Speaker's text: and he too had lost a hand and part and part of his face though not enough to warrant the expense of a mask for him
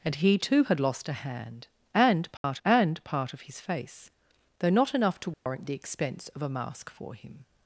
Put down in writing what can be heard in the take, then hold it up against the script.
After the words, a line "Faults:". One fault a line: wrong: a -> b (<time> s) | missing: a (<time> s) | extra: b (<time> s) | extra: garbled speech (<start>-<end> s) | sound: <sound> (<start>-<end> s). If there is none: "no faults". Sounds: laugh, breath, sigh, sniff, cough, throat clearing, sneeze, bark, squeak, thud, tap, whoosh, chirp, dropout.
and he too had lost a hand and part and part of his face though not enough to warrant the expense of a mask for him
Faults:
sound: dropout (2.4-2.4 s)
sound: dropout (5.3-5.5 s)